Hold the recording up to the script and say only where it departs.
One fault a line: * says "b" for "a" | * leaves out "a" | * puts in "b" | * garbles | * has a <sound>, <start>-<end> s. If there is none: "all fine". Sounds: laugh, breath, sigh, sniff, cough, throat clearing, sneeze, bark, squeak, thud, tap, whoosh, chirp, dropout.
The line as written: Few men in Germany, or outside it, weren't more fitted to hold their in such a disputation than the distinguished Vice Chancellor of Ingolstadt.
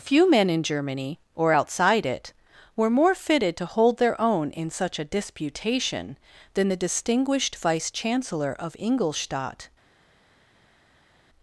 * says "were" for "weren't"
* puts in "own"